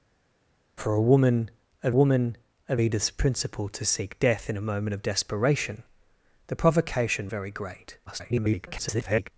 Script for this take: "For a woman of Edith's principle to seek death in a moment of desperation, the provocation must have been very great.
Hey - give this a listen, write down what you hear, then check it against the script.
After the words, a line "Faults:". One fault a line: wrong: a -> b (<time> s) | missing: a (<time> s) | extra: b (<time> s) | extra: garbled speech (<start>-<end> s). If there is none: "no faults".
"For a woman of woman of Edith's principle to seek death in a moment of desperation, the provocation very great. [garbled]
Faults:
extra: woman of (1.9 s)
missing: must have been (7.3 s)
extra: garbled speech (8.1-9.3 s)